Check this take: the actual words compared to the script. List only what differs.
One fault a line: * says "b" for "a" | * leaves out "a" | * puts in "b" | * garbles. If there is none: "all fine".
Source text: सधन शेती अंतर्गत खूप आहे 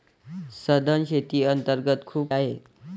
all fine